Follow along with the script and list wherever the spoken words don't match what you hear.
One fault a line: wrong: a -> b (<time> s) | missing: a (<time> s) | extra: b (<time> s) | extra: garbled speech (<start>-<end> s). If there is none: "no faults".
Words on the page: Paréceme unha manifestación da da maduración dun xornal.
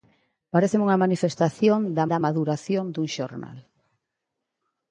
no faults